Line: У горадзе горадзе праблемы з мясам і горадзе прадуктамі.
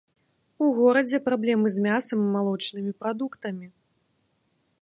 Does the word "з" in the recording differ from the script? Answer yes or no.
no